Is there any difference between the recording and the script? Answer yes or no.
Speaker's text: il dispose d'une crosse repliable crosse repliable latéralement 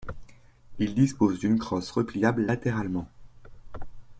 yes